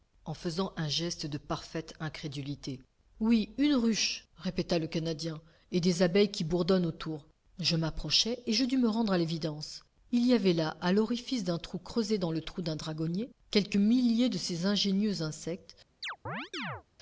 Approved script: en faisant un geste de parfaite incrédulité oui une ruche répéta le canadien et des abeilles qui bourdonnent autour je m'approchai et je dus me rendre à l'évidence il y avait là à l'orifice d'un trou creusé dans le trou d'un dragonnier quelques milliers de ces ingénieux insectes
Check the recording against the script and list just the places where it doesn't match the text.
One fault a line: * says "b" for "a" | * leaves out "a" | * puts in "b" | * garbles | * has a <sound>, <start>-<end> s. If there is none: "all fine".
* has a chirp, 16.0-16.8 s